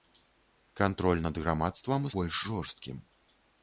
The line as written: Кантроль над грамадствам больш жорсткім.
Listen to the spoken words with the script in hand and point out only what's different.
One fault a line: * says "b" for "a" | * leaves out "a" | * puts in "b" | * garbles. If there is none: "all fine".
all fine